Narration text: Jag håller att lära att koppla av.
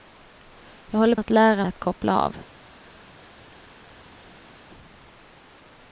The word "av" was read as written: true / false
true